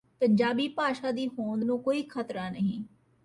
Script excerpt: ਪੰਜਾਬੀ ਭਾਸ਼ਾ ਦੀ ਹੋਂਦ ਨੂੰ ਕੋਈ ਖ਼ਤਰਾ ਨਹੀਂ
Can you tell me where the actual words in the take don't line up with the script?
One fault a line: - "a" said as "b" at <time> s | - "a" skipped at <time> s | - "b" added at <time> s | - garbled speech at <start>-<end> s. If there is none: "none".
none